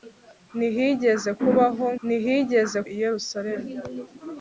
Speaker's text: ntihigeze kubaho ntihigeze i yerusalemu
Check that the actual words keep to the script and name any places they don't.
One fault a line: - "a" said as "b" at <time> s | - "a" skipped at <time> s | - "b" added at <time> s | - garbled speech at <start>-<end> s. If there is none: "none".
none